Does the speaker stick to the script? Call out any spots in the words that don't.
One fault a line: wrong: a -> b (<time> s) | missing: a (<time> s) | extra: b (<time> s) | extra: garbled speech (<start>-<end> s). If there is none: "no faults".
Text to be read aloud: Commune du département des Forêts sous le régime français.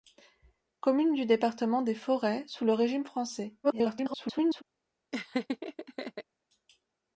extra: garbled speech (3.6-4.6 s)